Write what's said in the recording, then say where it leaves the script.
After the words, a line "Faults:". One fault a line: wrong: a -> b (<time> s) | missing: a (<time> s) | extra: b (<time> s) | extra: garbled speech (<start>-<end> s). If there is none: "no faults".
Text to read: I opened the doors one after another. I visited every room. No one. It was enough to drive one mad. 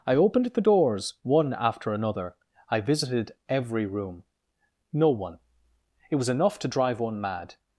I opened the doors one after another. I visited every room. No one. It was enough to drive one mad.
Faults:
no faults